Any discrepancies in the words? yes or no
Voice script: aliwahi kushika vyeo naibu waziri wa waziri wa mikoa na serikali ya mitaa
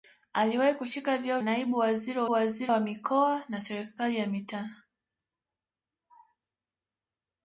no